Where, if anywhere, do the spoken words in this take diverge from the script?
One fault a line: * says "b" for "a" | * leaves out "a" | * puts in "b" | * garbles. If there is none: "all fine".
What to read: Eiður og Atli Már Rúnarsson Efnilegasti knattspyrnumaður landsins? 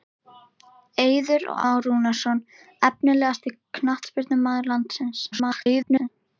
* leaves out "Atli"
* garbles